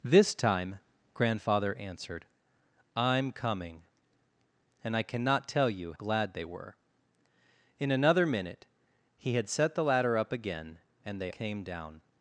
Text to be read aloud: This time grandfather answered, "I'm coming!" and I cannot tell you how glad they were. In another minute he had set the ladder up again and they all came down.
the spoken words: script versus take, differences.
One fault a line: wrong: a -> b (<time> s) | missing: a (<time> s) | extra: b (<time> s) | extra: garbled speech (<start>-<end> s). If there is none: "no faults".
missing: how (5.9 s)
missing: all (11.3 s)